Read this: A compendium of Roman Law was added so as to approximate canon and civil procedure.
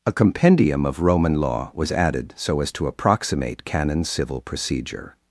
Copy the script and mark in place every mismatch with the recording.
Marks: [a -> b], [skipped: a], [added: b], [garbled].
A compendium of Roman Law was added so as to approximate canon [skipped: and] civil procedure.